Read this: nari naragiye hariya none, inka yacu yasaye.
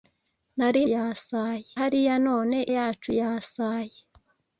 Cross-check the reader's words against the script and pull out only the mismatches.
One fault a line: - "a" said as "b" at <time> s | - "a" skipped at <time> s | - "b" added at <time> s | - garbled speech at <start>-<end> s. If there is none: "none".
- "naragiye" said as "yasaye" at 0.9 s
- "inka" skipped at 2.6 s